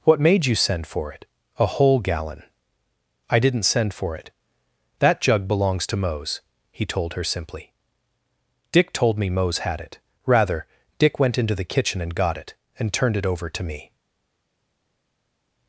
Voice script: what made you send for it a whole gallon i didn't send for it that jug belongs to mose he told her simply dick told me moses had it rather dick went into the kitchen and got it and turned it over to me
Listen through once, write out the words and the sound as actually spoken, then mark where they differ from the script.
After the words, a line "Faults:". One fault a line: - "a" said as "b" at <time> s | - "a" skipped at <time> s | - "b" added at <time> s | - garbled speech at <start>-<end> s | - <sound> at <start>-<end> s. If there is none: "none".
what made you send for it a whole gallon i didn't send for it that jug belongs to mose he told her simply dick told me mose had it rather dick went into the kitchen and got it and turned it over to me
Faults:
- "moses" said as "mose" at 9.3 s